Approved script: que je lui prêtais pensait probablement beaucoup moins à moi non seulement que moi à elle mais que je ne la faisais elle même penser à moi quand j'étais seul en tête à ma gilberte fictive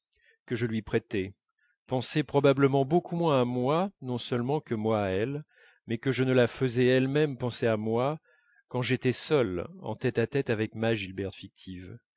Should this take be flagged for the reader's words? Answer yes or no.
yes